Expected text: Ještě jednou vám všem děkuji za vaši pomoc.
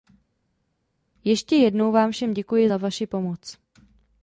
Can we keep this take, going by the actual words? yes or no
yes